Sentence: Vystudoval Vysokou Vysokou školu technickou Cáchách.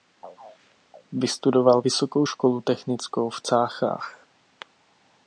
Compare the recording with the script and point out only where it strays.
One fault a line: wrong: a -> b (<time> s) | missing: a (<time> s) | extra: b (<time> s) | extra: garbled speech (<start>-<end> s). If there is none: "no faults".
missing: Vysokou (2.3 s)
extra: v (3.3 s)